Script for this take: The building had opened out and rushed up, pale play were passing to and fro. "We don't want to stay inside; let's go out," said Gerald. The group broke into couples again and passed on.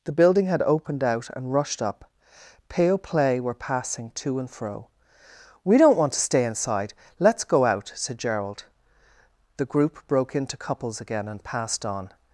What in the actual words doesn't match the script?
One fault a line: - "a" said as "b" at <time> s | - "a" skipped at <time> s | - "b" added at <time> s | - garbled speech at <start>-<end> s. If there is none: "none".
none